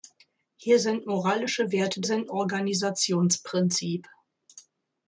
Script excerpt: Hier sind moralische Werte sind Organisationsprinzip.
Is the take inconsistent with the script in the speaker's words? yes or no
no